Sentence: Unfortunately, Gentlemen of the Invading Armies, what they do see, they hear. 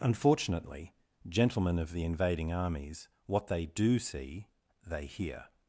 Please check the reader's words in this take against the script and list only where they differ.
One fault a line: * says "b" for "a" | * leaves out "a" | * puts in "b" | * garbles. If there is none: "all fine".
all fine